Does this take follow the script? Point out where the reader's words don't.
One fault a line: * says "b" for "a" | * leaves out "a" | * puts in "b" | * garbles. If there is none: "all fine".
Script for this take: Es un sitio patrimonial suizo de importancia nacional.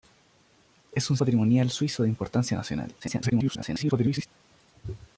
* leaves out "sitio"
* garbles